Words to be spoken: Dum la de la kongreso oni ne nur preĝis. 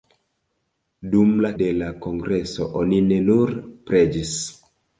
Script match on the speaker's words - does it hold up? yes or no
yes